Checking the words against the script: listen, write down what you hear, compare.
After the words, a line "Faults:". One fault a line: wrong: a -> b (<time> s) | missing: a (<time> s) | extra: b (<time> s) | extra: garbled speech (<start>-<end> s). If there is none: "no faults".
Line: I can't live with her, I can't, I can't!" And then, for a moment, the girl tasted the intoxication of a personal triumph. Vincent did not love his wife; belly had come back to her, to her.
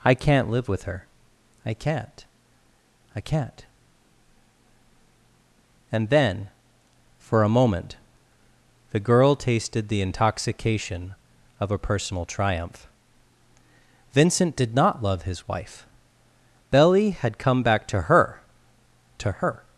I can't live with her, I can't, I can't!" And then, for a moment, the girl tasted the intoxication of a personal triumph. Vincent did not love his wife; belly had come back to her, to her.
Faults:
no faults